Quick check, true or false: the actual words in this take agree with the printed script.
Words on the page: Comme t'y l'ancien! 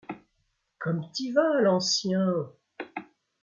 false